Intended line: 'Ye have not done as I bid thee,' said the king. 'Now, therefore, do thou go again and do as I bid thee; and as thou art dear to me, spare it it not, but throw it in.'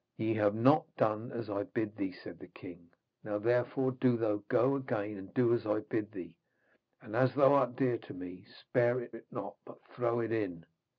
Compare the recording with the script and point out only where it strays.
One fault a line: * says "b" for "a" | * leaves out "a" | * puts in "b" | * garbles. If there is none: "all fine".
all fine